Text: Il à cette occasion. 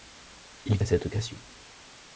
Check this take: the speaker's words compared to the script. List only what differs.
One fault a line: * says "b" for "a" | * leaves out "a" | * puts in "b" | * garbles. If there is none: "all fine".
all fine